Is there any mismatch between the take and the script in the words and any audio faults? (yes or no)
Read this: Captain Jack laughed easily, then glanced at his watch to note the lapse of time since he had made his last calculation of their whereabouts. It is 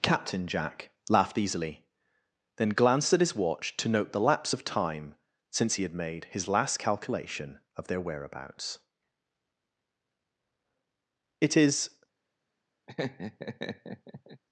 yes